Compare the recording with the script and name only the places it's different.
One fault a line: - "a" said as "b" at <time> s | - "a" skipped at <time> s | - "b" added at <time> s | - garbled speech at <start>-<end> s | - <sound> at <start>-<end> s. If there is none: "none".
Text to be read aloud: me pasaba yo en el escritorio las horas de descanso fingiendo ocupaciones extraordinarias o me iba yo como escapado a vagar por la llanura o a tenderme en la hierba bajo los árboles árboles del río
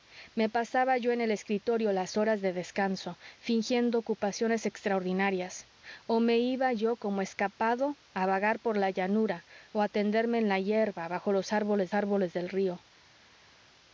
none